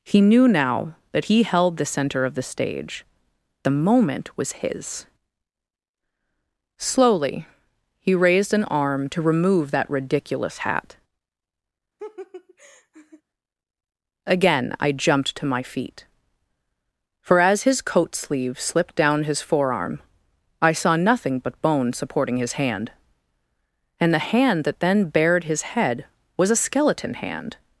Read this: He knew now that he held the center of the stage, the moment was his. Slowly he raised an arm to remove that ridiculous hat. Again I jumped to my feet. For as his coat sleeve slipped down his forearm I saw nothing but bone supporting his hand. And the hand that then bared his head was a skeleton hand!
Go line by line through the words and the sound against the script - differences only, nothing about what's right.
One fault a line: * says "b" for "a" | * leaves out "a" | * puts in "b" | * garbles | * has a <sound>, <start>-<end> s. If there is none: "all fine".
* has a laugh, 12.0-13.2 s